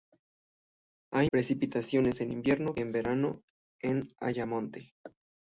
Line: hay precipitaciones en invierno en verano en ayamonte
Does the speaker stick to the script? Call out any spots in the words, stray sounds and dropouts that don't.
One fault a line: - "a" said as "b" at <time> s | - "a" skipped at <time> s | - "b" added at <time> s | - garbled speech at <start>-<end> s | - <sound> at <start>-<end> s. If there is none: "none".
none